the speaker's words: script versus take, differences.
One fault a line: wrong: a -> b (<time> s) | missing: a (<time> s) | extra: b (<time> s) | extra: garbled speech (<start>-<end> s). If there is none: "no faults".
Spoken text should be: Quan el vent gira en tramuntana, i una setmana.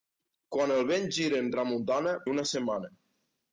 no faults